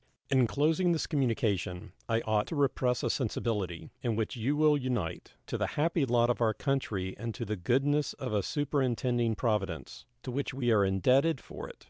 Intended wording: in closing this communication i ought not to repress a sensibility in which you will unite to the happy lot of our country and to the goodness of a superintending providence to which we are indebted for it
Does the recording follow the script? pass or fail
fail